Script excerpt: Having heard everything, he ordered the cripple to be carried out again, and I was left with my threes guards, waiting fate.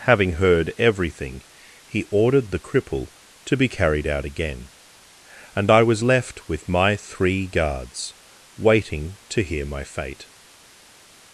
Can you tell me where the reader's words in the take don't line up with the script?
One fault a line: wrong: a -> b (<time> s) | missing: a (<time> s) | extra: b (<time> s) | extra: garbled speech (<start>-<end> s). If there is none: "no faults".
wrong: threes -> three (7.0 s)
extra: to hear my (9.3 s)